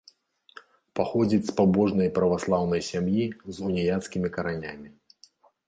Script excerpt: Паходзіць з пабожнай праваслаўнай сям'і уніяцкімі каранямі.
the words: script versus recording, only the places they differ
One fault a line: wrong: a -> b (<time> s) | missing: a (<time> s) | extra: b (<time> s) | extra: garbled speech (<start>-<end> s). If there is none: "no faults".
extra: з (3.5 s)